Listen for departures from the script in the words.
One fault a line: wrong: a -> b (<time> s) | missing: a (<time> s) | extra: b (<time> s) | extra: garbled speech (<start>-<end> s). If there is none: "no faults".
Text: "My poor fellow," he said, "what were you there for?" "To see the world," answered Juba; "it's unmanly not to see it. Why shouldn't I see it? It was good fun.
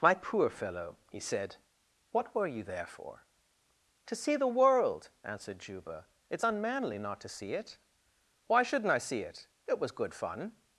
no faults